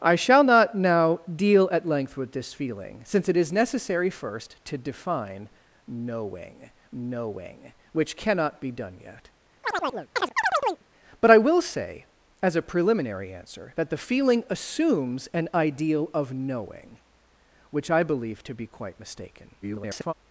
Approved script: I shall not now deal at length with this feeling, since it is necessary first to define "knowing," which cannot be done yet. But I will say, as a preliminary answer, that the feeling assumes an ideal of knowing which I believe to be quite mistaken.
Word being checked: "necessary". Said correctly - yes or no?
yes